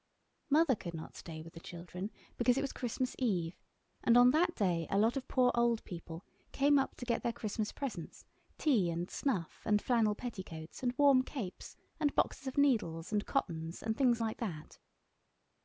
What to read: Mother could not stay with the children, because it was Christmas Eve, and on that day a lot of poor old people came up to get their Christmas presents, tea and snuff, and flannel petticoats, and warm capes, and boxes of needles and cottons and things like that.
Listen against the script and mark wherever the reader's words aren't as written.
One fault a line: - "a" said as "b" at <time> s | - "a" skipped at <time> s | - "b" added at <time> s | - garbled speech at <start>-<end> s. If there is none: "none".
none